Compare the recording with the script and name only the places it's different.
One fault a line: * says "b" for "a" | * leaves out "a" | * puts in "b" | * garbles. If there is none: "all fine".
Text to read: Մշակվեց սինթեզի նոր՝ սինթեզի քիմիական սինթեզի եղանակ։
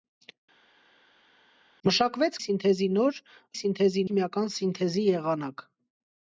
all fine